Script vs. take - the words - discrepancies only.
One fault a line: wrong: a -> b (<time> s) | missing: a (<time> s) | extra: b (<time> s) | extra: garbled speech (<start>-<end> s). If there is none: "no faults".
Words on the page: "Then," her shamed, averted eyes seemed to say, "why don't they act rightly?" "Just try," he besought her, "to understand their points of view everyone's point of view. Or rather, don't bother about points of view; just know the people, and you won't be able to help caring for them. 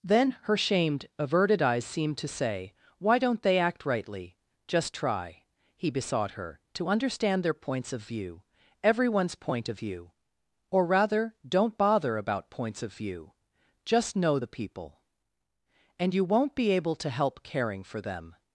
no faults